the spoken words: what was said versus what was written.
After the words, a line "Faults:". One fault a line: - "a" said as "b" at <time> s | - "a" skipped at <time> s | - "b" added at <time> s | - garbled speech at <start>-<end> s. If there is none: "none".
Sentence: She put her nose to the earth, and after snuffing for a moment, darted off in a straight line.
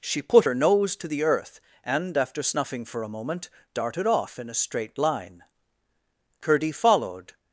She put her nose to the earth, and after snuffing for a moment, darted off in a straight line. Curdie followed
Faults:
- "Curdie followed" added at 6.4 s